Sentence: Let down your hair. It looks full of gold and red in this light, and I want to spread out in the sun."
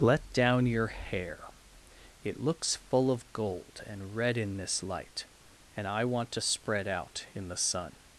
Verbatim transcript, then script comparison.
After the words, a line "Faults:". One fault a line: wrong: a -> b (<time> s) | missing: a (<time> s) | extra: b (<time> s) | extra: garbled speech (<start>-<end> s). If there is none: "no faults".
Let down your hair. It looks full of gold and red in this light, and I want to spread out in the sun."
Faults:
no faults